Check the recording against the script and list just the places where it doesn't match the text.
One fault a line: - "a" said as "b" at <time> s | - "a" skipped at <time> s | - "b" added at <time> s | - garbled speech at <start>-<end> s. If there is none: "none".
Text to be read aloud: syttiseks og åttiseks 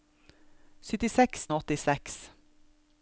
none